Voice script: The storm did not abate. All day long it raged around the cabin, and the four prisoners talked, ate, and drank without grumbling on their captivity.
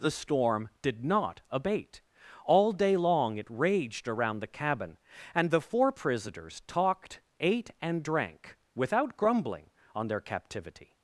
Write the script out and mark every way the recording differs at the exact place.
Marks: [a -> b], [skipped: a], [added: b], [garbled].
The storm did not abate. All day long it raged around the cabin, and the four prisoners talked, ate, and drank without grumbling on their captivity.